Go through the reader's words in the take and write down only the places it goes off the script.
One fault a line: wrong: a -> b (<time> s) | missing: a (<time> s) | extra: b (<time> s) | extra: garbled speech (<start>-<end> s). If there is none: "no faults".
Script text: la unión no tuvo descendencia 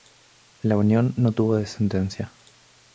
no faults